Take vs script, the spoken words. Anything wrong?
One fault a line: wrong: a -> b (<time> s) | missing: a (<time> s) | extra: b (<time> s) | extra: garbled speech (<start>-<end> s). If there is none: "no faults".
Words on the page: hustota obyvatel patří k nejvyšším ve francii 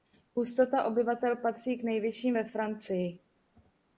no faults